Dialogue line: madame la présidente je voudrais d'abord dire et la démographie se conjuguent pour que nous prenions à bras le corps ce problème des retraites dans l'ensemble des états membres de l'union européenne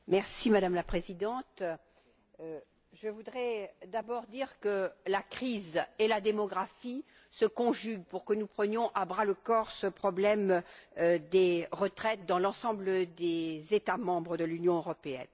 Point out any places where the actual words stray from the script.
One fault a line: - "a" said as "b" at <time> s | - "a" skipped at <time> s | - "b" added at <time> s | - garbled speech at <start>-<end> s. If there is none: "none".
- "que la crise" added at 4.6 s